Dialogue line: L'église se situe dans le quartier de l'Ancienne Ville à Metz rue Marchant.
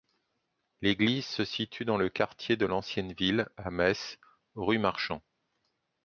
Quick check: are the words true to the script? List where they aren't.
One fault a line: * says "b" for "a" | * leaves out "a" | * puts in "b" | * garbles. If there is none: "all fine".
all fine